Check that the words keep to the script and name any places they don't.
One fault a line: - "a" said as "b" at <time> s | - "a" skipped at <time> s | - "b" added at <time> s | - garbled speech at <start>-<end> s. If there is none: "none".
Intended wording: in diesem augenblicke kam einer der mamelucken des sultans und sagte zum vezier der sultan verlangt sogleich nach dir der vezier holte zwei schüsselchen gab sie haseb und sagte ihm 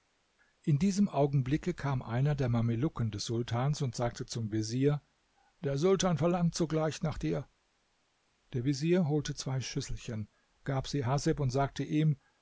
none